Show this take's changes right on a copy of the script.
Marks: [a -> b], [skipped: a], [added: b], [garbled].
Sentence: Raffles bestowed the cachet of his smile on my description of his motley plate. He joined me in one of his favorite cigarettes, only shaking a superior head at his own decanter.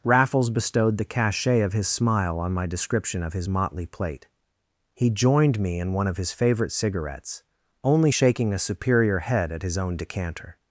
Raffles bestowed the cachet of his smile on my description of his motley plate. He joined me in one of his favorite cigarettes, only shaking a superior head at his own decanter.